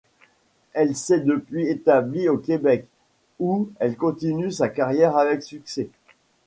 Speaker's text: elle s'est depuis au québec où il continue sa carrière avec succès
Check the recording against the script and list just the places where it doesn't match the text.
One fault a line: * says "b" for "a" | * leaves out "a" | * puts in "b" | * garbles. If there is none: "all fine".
* puts in "établie"
* says "elle" for "il"